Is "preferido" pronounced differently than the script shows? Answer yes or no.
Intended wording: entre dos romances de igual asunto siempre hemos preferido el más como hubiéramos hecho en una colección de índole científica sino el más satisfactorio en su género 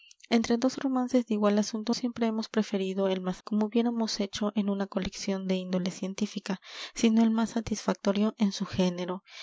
no